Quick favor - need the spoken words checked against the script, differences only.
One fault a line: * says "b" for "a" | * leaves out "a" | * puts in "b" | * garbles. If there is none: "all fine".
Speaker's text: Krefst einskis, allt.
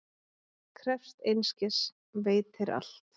* puts in "veitir"